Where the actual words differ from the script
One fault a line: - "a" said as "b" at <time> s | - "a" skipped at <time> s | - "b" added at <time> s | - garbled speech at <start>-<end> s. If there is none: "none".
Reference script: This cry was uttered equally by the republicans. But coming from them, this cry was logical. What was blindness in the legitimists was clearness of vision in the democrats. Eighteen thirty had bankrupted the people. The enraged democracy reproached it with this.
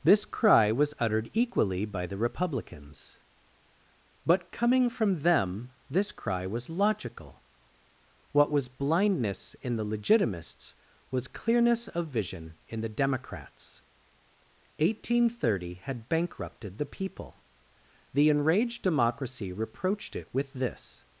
none